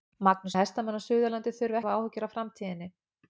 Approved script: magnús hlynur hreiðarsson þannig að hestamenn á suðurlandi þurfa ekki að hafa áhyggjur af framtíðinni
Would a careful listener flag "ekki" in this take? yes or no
yes